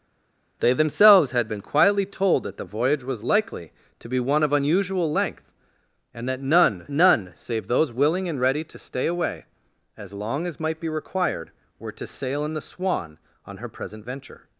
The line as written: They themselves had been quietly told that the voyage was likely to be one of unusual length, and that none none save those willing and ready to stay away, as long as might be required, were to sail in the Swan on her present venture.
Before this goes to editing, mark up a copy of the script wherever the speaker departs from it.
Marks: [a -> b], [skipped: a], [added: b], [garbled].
They themselves had been quietly told that the voyage was likely to be one of unusual length, and that none none save those willing and ready to stay away, as long as might be required, were to sail in the Swan on her present venture.